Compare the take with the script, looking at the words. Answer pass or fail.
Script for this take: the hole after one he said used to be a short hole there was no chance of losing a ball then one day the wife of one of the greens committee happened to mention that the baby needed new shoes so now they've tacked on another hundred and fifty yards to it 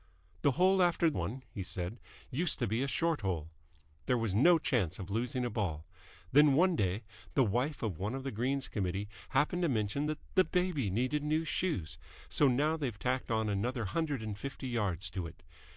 pass